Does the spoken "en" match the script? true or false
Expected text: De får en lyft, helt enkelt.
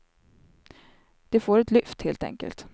false